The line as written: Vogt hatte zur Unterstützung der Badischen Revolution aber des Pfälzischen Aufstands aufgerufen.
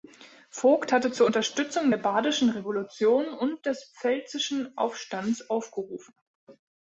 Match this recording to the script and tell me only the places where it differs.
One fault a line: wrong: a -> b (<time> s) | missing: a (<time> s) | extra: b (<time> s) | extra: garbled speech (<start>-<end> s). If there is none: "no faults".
wrong: aber -> und (3.3 s)